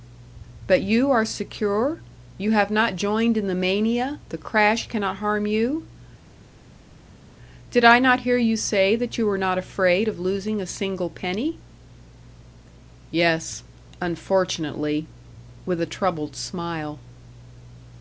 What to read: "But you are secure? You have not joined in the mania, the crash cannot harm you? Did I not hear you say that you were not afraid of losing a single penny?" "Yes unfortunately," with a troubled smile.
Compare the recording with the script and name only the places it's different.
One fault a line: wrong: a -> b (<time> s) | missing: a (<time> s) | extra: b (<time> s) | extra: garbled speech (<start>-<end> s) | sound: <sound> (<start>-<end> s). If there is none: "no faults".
no faults